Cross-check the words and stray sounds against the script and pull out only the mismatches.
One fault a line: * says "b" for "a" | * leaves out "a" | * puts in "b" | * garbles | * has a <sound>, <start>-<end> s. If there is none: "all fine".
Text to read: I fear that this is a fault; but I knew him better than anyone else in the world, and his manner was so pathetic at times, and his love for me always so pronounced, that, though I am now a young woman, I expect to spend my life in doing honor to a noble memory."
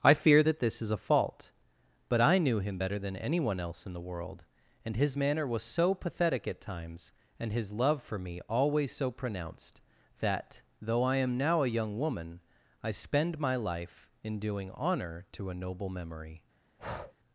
* leaves out "expect to"
* has a breath, 16.8-17.1 s